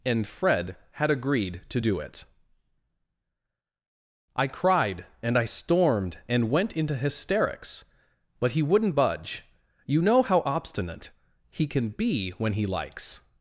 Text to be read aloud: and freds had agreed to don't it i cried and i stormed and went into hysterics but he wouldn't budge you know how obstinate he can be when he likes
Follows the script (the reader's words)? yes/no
no